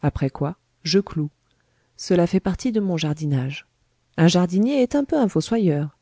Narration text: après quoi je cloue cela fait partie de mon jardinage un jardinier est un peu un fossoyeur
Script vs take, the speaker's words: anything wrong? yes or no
no